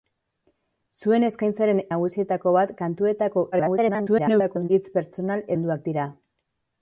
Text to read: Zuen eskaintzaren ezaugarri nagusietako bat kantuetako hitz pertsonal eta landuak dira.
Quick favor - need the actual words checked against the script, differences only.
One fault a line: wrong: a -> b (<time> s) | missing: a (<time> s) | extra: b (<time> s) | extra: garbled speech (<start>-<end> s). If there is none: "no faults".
missing: ezaugarri (1.8 s)
extra: garbled speech (3.5-4.7 s)
missing: eta (5.5 s)